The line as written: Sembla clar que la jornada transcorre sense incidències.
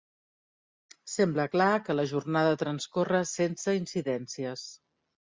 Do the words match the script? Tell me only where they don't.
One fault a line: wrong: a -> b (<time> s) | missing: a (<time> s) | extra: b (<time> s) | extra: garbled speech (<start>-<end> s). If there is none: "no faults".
no faults